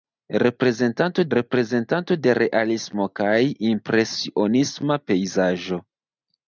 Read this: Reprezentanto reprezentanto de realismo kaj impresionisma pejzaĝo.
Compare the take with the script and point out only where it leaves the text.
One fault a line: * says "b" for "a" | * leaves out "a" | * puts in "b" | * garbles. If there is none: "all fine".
all fine